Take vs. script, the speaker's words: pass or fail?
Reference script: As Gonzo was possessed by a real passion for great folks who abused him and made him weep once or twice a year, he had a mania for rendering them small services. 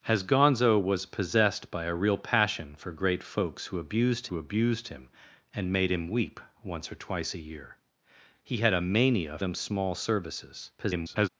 fail